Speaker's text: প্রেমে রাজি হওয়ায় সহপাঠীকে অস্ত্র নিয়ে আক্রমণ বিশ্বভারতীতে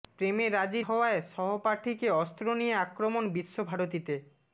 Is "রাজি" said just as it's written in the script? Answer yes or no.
yes